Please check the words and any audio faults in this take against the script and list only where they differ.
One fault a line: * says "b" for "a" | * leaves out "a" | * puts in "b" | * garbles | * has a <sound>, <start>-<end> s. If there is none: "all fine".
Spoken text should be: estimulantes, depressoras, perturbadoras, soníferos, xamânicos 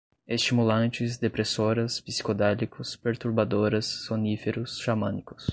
* puts in "psicodélicos"